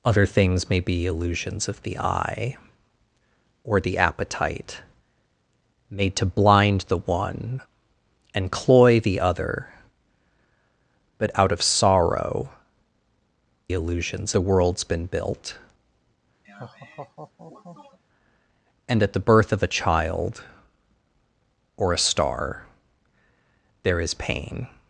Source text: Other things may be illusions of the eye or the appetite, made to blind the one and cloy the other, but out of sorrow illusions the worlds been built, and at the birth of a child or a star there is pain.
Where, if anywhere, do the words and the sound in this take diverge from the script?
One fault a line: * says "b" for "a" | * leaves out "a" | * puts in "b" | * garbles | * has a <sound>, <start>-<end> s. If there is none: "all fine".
* has a laugh, 16.4-18.0 s